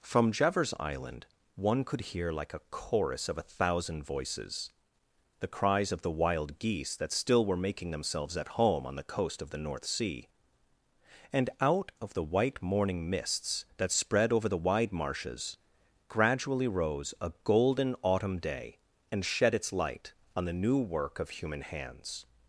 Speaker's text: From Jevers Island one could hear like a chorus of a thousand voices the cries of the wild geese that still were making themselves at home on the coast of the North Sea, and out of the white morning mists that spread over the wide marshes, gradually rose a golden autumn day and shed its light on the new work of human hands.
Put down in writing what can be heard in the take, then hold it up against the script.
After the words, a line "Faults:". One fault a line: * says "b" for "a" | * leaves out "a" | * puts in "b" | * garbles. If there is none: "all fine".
From Jevers Island one could hear like a chorus of a thousand voices the cries of the wild geese that still were making themselves at home on the coast of the North Sea, and out of the white morning mists that spread over the wide marshes, gradually rose a golden autumn day and shed its light on the new work of human hands.
Faults:
all fine